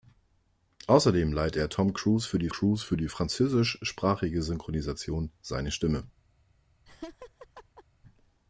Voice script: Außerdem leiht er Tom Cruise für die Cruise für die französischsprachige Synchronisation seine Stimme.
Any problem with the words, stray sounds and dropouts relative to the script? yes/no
yes